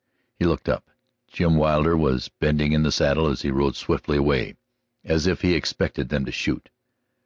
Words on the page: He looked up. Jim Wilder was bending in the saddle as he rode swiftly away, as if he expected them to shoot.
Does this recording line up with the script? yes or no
yes